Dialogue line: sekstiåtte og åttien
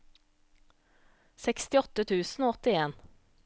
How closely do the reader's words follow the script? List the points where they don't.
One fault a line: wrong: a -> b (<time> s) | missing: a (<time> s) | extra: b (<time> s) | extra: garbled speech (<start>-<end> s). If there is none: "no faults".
extra: tusen (2.1 s)